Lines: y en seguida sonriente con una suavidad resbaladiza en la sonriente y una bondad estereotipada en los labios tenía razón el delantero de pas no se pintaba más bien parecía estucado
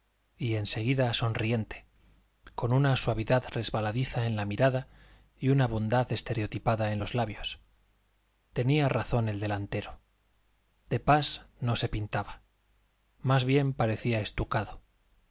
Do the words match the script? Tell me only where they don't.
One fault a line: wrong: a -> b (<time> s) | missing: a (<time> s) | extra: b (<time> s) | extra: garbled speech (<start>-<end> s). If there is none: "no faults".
wrong: sonriente -> mirada (4.5 s)